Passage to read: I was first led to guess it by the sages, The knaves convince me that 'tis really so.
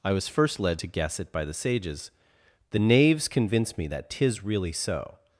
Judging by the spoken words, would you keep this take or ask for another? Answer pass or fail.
pass